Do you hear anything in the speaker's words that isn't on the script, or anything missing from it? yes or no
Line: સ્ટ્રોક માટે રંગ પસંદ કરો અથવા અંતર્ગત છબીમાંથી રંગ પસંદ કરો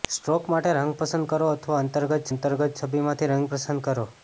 yes